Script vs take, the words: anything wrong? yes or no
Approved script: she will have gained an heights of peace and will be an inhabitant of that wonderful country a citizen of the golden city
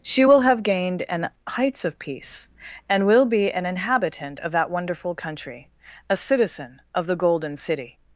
no